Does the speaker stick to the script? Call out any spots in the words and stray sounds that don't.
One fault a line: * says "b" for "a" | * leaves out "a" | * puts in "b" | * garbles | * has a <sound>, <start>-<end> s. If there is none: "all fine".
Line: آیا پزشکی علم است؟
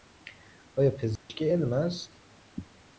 * has a dropout, 1.2-1.3 s